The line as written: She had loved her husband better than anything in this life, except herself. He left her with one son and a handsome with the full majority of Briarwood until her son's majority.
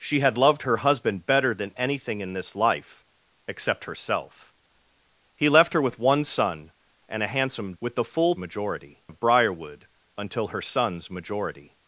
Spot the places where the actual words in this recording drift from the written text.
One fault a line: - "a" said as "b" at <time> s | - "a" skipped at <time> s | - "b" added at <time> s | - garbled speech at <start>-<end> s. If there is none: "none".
none